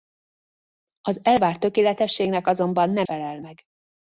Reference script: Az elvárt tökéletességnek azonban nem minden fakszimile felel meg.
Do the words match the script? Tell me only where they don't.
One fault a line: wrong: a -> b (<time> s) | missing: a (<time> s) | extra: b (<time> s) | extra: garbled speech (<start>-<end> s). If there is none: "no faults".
missing: minden fakszimile (3.1 s)